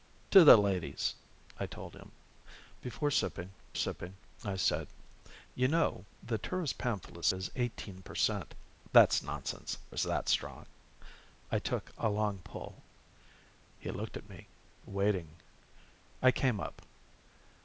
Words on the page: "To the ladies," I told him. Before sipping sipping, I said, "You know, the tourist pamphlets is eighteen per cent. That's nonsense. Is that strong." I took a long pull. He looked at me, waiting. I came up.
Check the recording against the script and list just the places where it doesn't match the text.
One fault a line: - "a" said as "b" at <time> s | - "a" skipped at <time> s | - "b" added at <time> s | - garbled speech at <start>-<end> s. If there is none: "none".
none